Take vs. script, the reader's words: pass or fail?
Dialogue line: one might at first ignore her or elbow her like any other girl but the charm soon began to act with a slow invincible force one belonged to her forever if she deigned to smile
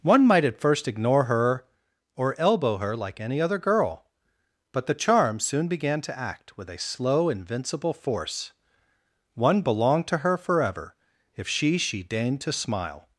fail